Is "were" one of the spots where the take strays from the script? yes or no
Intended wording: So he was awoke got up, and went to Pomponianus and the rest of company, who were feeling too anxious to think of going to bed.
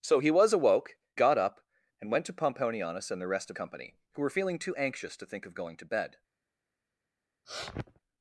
no